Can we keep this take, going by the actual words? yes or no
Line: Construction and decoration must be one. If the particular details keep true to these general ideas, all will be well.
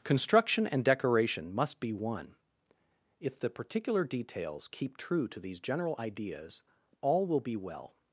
yes